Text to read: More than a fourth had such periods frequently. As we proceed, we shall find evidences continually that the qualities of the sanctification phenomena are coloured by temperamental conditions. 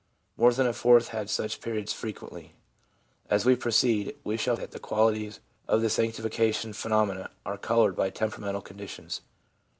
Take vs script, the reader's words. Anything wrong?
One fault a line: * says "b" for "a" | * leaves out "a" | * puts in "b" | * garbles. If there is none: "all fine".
* leaves out "find evidences continually"